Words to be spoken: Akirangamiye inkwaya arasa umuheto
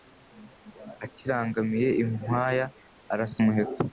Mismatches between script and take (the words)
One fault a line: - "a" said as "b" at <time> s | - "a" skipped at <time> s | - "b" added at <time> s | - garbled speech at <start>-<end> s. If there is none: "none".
none